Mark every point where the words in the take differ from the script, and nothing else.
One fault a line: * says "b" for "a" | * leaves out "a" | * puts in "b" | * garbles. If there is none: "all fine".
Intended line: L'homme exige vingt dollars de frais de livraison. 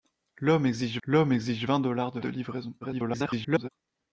* puts in "l'homme exige"
* leaves out "frais"
* garbles